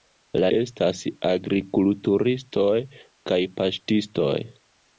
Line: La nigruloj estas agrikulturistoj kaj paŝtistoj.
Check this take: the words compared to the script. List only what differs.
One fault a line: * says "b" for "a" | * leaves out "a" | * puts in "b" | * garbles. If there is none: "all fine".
* leaves out "nigruloj"